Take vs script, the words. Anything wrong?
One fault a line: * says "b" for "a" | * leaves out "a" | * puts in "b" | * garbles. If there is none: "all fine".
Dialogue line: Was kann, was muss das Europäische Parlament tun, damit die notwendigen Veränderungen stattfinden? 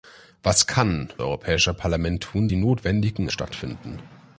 * leaves out "was muss das"
* leaves out "damit"
* leaves out "Veränderungen"